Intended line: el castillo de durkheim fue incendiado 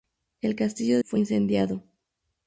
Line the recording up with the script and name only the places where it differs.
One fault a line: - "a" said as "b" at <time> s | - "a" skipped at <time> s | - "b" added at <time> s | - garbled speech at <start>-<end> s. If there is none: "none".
- "de durkheim" skipped at 1.0 s